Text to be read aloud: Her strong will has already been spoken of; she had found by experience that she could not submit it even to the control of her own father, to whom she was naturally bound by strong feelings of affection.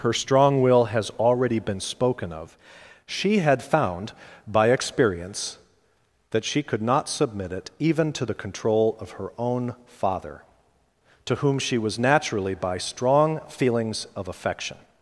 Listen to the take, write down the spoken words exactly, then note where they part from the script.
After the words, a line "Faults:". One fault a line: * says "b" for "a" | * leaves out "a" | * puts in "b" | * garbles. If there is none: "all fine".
Her strong will has already been spoken of; she had found by experience that she could not submit it even to the control of her own father, to whom she was naturally by strong feelings of affection.
Faults:
* leaves out "bound"